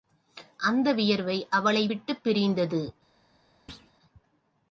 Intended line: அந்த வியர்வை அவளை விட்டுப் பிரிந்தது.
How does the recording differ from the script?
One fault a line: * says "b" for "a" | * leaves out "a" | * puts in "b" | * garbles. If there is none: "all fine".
all fine